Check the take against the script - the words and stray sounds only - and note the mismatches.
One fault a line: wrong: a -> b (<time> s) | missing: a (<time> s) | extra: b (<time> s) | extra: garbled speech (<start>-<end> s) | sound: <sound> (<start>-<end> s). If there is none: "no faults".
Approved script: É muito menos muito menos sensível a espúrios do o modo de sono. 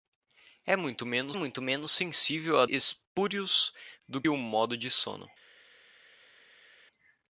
no faults